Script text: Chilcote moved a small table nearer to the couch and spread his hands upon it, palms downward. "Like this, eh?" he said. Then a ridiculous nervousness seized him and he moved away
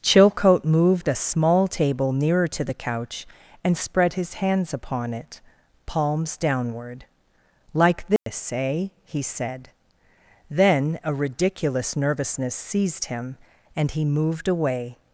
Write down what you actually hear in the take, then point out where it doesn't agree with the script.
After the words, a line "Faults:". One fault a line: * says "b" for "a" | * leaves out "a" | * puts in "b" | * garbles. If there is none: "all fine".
Chilcote moved a small table nearer to the couch and spread his hands upon it, palms downward. "Like this, eh?" he said. Then a ridiculous nervousness seized him and he moved away
Faults:
all fine